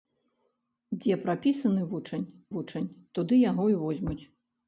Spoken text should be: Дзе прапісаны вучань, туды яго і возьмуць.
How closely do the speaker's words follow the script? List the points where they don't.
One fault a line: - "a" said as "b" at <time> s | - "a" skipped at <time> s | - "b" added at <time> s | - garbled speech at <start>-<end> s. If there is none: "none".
- "вучань" added at 2.6 s